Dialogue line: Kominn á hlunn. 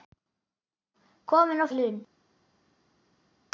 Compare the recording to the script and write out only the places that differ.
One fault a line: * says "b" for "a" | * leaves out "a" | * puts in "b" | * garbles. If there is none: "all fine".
all fine